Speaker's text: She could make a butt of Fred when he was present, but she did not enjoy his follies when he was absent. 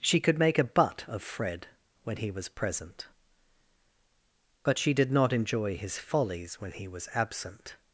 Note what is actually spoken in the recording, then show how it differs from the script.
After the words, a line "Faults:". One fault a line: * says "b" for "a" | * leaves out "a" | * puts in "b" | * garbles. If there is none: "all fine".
She could make a butt of Fred when he was present, but she did not enjoy his follies when he was absent.
Faults:
all fine